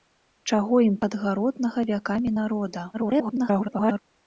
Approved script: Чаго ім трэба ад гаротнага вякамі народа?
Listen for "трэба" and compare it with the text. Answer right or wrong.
wrong